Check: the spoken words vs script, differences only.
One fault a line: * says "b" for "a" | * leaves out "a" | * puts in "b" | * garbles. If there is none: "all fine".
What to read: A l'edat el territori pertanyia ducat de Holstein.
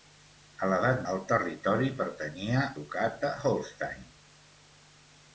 all fine